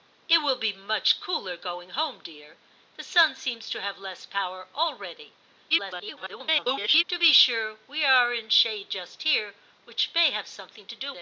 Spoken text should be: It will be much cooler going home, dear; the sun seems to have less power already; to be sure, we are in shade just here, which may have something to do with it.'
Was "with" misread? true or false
true